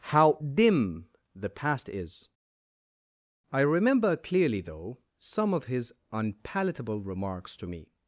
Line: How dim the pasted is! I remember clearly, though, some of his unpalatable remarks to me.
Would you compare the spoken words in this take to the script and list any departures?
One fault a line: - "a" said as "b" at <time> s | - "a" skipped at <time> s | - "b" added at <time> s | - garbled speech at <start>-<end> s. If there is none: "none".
- "pasted" said as "past" at 1.5 s